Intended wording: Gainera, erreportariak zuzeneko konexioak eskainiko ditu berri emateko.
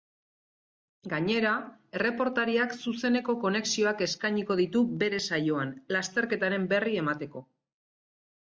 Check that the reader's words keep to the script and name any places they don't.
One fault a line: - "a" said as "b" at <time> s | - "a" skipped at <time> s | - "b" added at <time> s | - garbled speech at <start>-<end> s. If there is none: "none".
- "bere saioan lasterketaren" added at 5.0 s